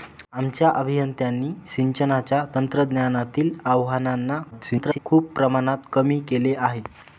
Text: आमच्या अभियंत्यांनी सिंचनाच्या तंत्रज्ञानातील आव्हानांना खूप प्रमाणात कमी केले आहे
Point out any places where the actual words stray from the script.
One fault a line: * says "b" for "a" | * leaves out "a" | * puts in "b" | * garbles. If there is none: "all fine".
* garbles